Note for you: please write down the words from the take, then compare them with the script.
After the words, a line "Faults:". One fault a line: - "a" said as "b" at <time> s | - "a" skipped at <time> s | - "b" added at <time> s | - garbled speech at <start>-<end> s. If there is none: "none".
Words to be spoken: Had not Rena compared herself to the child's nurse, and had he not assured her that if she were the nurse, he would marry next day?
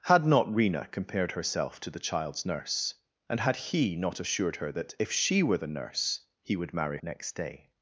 Had not Rena compared herself to the child's nurse, and had he not assured her that if she were the nurse, he would marry next day?
Faults:
none